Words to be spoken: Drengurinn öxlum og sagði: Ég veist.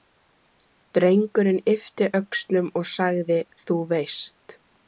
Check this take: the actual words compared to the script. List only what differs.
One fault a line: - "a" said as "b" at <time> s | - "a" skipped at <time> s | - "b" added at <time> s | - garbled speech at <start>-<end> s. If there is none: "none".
- "yppti" added at 1.8 s
- "Ég" said as "Þú" at 3.7 s